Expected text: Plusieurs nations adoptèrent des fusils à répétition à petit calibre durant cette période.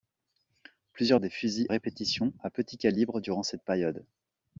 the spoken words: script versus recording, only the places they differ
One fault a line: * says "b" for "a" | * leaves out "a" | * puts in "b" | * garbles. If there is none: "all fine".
* leaves out "nations adoptèrent"
* leaves out "à"